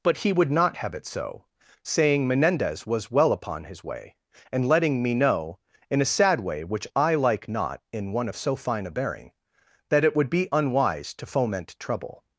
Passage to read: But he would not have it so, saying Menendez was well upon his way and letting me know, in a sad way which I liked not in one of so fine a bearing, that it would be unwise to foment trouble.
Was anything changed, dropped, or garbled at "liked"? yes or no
yes